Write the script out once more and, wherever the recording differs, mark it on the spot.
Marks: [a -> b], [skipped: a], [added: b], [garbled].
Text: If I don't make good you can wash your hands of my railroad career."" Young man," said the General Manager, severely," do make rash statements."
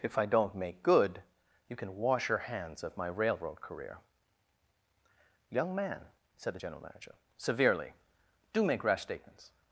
If I don't make good you can wash your hands of my railroad career."" Young man," said the General Manager, severely," do make rash statements."